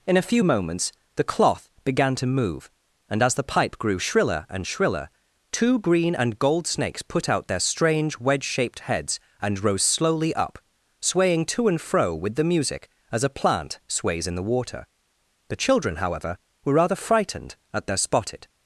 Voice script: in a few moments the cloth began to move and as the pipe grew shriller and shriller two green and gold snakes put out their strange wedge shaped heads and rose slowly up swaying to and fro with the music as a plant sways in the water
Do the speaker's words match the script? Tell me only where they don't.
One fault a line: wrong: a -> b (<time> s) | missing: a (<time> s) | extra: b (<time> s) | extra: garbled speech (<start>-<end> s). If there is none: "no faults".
extra: the children however were rather frightened at their spotted (15.5 s)